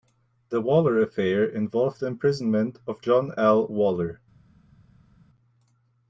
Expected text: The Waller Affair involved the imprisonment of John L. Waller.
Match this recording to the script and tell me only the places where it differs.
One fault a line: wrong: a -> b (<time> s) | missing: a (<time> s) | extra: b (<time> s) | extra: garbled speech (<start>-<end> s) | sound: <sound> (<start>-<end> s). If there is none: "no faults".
no faults